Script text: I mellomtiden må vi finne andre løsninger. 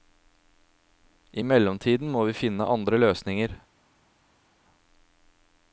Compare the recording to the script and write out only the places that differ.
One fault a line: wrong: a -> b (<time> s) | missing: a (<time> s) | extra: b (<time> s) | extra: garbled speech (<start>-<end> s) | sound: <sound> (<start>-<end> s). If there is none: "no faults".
no faults